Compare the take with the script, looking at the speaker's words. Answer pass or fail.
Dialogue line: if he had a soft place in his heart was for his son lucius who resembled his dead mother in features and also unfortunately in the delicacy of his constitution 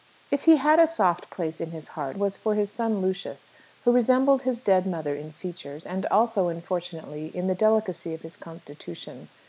pass